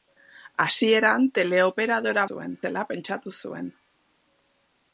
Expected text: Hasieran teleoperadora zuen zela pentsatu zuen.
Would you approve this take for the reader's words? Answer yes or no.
yes